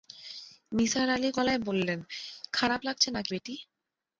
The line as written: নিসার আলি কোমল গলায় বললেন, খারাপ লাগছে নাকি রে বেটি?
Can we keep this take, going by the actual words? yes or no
no